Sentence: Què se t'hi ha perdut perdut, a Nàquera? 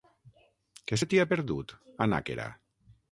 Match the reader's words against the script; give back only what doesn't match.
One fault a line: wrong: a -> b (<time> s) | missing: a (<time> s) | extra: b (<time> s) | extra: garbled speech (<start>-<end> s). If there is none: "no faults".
missing: perdut (1.7 s)